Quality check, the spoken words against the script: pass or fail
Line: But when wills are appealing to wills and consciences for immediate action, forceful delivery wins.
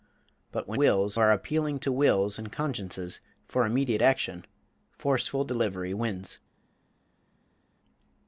pass